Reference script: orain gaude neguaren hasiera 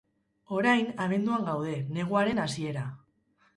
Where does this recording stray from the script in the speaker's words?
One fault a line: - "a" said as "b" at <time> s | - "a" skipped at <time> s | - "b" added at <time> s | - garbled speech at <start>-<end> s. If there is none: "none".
- "abenduan" added at 1.1 s